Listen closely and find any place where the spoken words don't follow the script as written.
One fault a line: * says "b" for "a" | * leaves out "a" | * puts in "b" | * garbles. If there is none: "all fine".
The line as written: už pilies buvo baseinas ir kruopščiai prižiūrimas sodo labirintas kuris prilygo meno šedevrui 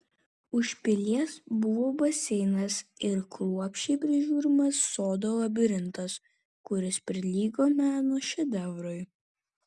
all fine